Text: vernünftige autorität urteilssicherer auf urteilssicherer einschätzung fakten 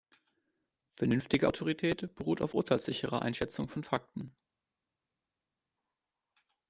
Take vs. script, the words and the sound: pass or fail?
fail